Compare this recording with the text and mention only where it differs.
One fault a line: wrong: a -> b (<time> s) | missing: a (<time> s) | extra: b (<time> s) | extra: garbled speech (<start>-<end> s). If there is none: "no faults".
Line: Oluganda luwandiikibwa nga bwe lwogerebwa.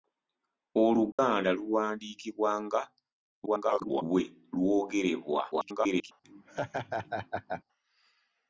extra: garbled speech (3.5-4.0 s)
extra: garbled speech (5.5-6.1 s)